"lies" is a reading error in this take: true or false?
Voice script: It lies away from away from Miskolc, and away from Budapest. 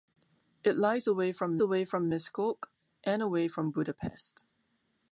false